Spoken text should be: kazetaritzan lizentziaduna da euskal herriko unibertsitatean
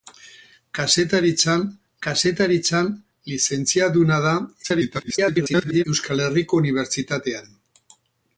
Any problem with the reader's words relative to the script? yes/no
yes